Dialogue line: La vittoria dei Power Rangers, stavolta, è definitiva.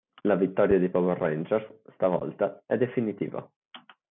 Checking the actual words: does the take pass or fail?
pass